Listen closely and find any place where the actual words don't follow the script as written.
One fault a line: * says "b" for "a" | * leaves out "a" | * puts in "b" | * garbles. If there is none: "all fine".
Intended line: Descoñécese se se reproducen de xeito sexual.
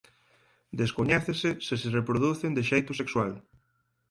all fine